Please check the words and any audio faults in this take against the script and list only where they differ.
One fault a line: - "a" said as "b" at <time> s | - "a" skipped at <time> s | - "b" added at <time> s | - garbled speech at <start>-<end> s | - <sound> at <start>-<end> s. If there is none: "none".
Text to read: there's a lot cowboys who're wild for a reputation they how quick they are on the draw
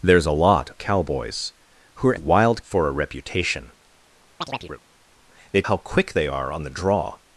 - chirp at 4.4-4.8 s